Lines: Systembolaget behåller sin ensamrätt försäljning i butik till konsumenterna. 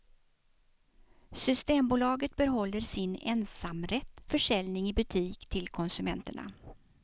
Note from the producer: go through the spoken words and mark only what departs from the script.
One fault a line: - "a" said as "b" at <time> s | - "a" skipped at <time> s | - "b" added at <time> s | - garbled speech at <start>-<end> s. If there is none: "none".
none